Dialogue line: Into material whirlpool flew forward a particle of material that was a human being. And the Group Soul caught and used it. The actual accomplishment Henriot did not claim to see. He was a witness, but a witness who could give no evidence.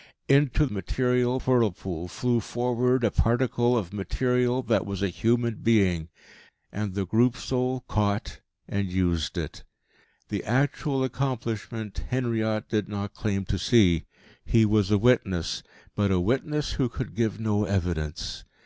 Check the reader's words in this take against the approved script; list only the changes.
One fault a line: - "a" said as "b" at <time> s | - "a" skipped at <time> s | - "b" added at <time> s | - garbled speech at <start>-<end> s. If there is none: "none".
none